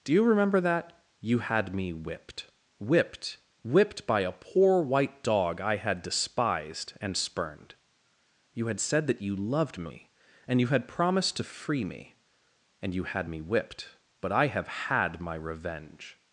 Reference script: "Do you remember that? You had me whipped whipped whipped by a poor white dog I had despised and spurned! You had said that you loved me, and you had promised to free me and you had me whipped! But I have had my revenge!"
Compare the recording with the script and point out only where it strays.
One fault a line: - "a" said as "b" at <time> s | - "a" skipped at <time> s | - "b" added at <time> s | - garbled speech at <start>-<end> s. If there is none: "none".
none